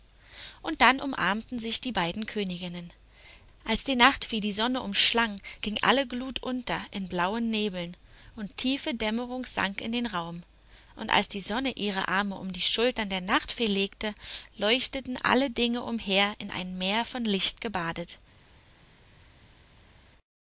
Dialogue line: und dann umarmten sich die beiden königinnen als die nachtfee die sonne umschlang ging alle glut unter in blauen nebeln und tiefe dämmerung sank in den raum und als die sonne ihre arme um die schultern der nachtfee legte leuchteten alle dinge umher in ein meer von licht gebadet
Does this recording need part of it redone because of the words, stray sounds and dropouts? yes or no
no